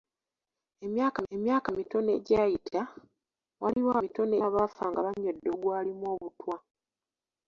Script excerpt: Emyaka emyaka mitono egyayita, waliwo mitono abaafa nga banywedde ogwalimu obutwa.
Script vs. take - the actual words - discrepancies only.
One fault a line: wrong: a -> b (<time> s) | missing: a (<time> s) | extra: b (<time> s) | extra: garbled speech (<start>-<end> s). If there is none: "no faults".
no faults